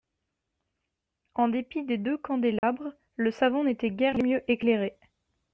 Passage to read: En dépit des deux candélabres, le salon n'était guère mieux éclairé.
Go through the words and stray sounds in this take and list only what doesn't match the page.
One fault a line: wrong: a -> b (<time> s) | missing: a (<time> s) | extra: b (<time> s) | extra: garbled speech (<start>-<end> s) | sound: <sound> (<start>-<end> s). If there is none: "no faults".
sound: dropout (2.6-2.6 s)